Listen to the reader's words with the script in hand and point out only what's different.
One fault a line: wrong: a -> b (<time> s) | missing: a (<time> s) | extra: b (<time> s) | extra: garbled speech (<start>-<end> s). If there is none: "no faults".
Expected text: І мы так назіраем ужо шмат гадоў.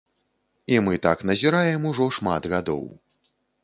no faults